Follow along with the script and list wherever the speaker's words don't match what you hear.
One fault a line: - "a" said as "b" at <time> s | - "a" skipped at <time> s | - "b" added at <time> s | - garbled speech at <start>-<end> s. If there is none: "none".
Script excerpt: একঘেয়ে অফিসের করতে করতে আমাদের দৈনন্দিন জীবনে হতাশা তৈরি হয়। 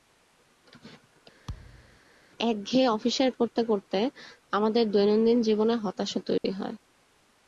none